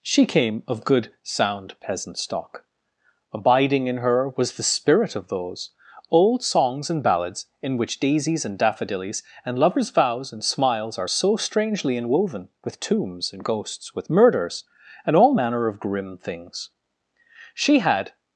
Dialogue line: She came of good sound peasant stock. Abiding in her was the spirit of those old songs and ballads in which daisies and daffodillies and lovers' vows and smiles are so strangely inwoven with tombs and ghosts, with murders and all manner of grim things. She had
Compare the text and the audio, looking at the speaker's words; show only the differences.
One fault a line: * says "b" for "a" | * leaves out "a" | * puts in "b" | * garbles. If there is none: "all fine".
all fine